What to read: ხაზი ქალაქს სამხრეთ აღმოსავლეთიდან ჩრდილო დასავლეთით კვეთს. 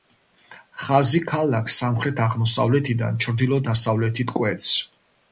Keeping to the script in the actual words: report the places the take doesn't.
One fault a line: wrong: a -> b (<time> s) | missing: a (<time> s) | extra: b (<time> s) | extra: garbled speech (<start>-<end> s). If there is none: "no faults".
no faults